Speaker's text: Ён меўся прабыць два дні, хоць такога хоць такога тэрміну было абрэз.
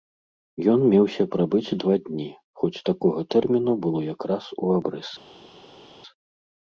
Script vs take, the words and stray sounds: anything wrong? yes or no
yes